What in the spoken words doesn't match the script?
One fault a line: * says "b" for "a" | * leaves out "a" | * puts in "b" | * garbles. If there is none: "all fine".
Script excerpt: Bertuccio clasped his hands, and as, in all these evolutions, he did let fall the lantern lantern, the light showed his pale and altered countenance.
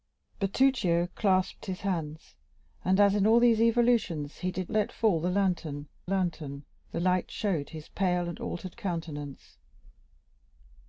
all fine